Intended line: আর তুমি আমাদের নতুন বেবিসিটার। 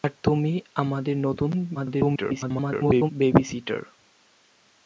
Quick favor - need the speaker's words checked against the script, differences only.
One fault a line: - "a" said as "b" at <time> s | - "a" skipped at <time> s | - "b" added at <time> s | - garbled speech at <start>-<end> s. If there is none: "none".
- garbled speech at 1.7-3.1 s